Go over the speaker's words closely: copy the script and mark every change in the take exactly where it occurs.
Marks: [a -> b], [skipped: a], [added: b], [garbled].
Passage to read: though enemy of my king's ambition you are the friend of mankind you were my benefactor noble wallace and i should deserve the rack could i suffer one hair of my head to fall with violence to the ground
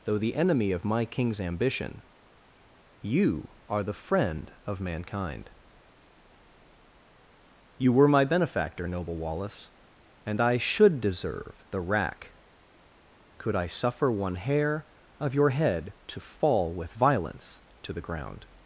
though [added: the] enemy of my king's ambition you are the friend of mankind you were my benefactor noble wallace and i should deserve the rack could i suffer one hair of [my -> your] head to fall with violence to the ground